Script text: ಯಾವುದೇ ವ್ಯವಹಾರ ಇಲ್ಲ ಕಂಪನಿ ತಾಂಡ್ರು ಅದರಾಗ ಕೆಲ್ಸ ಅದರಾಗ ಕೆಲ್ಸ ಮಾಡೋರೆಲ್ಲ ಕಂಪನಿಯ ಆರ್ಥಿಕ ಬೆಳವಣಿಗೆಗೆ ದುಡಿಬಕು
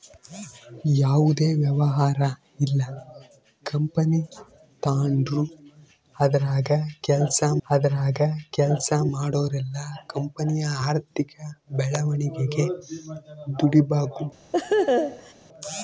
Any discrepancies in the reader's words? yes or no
no